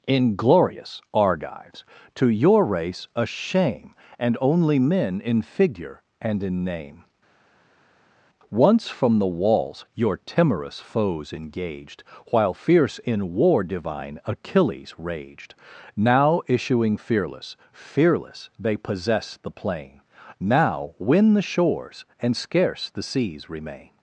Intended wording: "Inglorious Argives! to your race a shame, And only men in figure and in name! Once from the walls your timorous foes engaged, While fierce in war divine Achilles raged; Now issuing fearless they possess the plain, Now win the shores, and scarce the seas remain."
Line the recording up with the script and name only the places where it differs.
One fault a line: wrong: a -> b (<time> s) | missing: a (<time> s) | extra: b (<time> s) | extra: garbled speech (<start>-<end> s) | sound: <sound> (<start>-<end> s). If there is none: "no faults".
extra: fearless (17.7 s)